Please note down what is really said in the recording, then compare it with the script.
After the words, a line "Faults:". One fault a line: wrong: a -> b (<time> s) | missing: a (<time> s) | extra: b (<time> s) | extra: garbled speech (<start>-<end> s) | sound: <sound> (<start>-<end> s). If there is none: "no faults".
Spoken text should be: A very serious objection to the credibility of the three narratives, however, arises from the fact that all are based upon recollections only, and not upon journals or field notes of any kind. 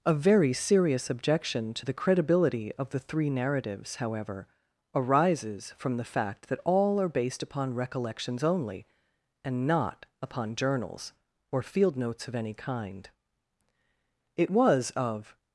A very serious objection to the credibility of the three narratives, however, arises from the fact that all are based upon recollections only, and not upon journals or field notes of any kind. It was, of
Faults:
extra: It was of (14.3 s)